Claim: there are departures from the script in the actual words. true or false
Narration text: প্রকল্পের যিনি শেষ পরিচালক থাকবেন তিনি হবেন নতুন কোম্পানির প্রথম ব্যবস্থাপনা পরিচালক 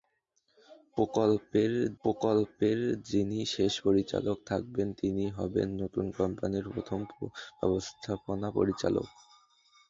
true